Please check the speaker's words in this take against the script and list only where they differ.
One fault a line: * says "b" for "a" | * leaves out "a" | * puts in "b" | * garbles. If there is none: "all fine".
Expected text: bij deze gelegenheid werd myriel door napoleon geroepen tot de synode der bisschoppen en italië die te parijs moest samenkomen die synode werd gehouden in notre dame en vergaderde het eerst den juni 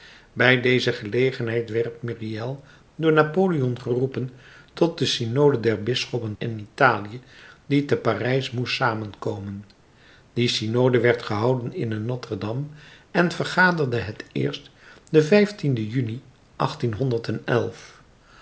all fine